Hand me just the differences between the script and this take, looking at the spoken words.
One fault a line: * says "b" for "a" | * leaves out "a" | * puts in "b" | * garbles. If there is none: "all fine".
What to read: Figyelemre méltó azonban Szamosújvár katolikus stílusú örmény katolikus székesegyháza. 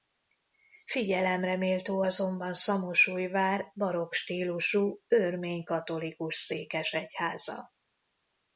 * says "barokk" for "katolikus"